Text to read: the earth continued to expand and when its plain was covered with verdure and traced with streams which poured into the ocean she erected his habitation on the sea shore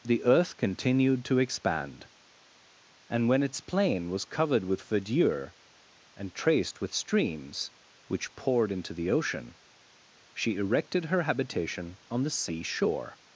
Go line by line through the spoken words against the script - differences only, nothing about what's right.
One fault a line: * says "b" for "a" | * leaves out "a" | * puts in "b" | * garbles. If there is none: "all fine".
* says "her" for "his"